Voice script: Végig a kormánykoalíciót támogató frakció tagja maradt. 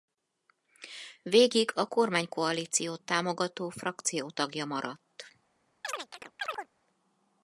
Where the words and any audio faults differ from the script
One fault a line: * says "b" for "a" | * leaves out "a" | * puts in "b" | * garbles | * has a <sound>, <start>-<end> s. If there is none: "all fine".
* has a chirp, 5.8-6.7 s